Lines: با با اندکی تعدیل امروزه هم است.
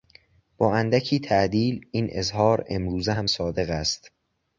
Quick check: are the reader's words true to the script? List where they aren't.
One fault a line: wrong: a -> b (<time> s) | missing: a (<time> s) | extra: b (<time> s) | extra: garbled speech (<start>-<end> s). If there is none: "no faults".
missing: با (0.8 s)
extra: این اظهار (1.9 s)
extra: صادق (3.2 s)